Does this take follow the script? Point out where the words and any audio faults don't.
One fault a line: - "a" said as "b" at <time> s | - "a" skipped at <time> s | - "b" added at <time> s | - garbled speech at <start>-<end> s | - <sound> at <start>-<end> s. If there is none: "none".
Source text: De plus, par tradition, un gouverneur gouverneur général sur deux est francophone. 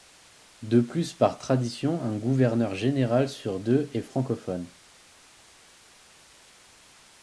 - "gouverneur" skipped at 2.7 s